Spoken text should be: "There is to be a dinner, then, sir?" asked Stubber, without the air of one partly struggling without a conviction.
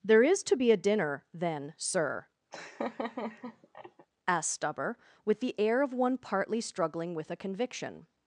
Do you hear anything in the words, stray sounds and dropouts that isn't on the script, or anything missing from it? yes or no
yes